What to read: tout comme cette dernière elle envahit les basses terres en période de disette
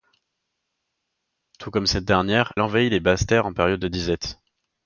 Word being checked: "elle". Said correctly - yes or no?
no